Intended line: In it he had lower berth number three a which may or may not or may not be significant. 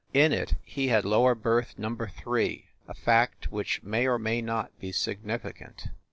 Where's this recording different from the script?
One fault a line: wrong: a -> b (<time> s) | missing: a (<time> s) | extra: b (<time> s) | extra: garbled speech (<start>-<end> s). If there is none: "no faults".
extra: fact (2.9 s)
missing: or may not (4.8 s)